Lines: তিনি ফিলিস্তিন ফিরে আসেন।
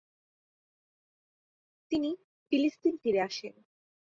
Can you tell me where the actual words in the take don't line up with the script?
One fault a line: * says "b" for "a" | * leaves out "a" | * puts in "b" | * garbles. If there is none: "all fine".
all fine